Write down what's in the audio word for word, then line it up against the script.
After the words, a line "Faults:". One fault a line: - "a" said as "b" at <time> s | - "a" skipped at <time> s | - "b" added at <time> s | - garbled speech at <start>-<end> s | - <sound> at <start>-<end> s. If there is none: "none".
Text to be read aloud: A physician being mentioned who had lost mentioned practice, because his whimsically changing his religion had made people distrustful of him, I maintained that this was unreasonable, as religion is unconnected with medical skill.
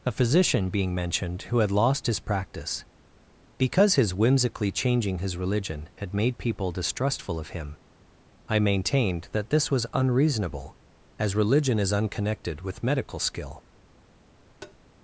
A physician being mentioned who had lost his practice, because his whimsically changing his religion had made people distrustful of him, I maintained that this was unreasonable, as religion is unconnected with medical skill.
Faults:
- "mentioned" said as "his" at 2.1 s
- tap at 14.6-14.8 s